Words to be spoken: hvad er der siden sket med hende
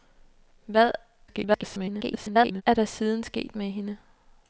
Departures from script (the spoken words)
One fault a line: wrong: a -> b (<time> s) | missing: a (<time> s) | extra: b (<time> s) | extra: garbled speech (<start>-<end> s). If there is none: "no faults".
extra: garbled speech (1.3-2.6 s)